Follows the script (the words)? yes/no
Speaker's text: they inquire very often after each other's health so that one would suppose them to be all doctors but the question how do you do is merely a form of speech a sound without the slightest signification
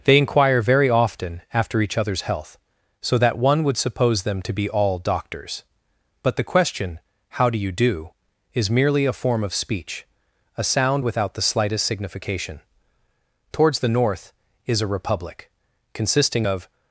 no